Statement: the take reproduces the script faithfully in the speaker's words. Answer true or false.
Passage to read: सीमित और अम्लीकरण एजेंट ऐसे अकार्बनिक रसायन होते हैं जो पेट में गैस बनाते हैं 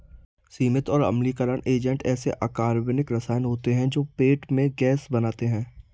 true